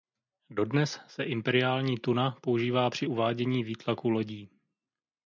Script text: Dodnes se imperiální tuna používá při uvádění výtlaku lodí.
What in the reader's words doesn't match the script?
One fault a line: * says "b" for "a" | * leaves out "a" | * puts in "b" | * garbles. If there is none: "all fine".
all fine